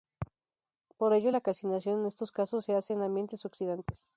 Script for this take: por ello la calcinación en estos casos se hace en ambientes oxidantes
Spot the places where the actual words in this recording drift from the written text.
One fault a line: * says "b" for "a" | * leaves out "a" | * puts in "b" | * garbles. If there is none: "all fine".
all fine